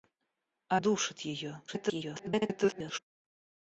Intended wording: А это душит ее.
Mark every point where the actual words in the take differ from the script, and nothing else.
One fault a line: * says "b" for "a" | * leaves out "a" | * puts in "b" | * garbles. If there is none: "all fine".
* leaves out "это"
* garbles